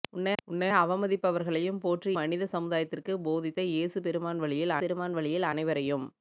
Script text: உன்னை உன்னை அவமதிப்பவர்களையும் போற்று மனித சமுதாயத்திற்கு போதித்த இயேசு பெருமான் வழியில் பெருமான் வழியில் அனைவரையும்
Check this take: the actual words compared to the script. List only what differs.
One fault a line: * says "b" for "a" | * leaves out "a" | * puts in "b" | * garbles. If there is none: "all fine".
all fine